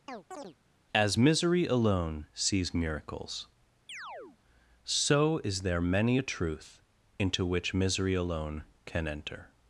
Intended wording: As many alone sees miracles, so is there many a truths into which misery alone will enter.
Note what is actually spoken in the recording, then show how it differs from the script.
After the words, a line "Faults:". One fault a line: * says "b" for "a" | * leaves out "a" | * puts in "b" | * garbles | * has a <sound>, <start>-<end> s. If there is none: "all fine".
As misery alone sees miracles, so is there many a truth into which misery alone can enter.
Faults:
* has a chirp, 0.1-0.6 s
* says "misery" for "many"
* has a chirp, 3.9-4.4 s
* says "truth" for "truths"
* says "can" for "will"